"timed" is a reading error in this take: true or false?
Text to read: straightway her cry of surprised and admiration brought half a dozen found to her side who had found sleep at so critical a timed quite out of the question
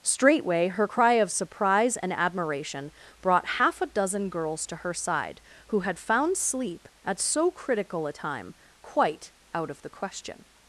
true